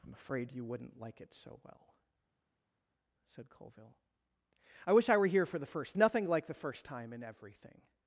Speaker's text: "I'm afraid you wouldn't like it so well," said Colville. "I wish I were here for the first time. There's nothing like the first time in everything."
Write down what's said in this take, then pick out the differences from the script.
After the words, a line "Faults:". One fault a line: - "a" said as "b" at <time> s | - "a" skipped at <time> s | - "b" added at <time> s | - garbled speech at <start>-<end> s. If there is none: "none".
"I'm afraid you wouldn't like it so well," said Colville. "I wish I were here for the first nothing like the first time in everything."
Faults:
- "time There's" skipped at 6.0 s